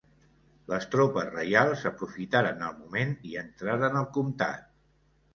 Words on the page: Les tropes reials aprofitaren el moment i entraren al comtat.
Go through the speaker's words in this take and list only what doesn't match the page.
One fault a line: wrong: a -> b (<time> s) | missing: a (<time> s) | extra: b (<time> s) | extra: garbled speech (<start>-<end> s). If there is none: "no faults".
no faults